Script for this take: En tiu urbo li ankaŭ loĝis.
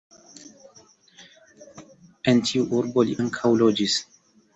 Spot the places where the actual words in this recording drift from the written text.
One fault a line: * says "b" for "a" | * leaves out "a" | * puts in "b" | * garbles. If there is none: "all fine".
all fine